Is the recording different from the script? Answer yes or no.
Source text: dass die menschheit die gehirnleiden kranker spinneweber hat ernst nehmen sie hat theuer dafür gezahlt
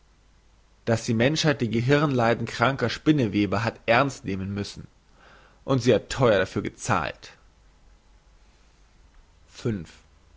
yes